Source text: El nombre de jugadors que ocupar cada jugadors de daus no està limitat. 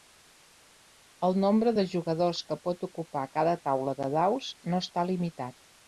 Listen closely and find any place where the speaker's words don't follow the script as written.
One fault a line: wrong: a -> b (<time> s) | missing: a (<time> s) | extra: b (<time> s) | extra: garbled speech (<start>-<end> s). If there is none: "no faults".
extra: pot (2.7 s)
wrong: jugadors -> taula (3.7 s)